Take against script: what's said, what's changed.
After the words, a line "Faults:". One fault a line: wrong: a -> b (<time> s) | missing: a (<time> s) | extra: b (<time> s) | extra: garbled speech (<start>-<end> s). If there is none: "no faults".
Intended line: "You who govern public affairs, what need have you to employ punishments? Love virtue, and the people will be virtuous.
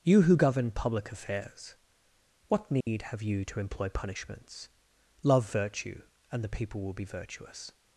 "You who govern public affairs, what need have you to employ punishments? Love virtue, and the people will be virtuous.
Faults:
no faults